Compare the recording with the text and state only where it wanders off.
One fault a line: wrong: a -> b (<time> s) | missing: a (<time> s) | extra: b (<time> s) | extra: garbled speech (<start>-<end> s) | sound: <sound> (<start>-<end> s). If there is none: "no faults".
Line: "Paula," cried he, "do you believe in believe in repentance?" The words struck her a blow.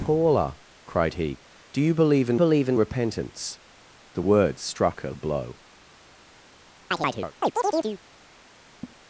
sound: chirp (6.9-8.0 s)
sound: laugh (8.8-9.0 s)